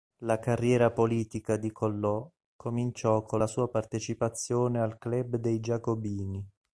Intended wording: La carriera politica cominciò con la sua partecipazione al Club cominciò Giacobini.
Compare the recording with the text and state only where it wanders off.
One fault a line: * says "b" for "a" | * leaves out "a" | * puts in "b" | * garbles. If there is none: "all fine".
* puts in "di Collot"
* says "dei" for "cominciò"